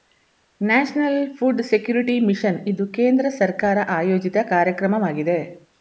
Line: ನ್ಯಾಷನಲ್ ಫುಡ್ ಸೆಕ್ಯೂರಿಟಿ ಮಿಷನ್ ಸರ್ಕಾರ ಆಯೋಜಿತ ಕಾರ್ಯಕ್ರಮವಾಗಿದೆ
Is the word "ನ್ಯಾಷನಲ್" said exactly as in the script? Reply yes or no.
yes